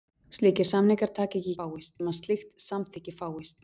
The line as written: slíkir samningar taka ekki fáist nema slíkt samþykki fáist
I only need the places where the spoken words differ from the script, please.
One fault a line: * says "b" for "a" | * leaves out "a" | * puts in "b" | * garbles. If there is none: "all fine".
all fine